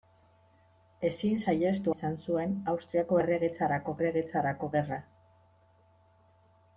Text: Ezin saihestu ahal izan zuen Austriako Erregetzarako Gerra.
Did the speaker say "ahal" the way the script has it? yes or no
no